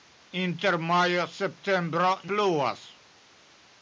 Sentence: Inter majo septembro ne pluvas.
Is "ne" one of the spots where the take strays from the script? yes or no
yes